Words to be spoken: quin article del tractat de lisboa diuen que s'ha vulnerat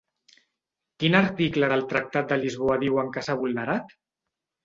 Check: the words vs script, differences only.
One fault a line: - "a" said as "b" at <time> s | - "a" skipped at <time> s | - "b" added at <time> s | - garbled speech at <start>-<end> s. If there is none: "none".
none